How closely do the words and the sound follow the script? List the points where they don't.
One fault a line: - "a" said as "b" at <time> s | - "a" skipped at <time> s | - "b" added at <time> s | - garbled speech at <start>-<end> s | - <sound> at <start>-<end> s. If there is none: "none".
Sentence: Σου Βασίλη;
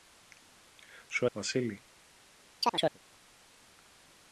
- chirp at 2.6-3.0 s